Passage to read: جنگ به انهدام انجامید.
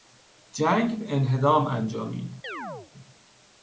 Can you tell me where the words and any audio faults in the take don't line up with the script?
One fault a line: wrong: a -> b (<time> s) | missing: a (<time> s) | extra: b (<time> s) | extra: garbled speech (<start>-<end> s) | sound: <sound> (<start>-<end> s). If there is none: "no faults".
sound: chirp (2.4-2.9 s)